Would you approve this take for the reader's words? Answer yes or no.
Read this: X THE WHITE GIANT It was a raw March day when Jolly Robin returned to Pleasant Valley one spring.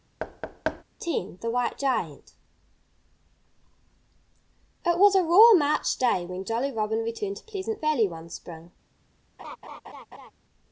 yes